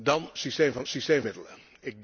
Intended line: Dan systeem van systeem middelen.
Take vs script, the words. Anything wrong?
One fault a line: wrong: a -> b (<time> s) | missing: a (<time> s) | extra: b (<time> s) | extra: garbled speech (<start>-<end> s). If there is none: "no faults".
no faults